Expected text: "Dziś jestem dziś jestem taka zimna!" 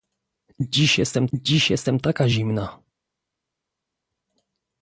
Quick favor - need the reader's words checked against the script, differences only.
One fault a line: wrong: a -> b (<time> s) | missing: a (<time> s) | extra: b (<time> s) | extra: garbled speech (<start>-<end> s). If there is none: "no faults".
no faults